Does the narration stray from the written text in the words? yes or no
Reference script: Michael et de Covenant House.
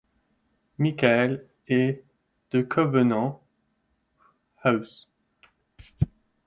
no